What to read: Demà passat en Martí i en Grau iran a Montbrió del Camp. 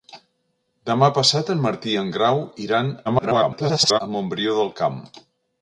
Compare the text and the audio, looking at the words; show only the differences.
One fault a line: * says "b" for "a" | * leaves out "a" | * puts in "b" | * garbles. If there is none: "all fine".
* garbles